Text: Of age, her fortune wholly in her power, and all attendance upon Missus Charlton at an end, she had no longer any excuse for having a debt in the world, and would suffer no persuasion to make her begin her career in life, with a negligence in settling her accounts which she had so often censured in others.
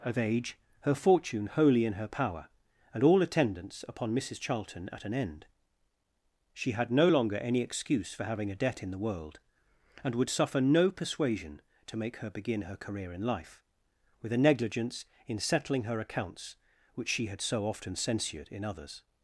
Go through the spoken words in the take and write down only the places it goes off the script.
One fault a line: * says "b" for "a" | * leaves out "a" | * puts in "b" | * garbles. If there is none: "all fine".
all fine